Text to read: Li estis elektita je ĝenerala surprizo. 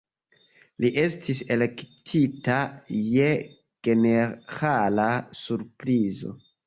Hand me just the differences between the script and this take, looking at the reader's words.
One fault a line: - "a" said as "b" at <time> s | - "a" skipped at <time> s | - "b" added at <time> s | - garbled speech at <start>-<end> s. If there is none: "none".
none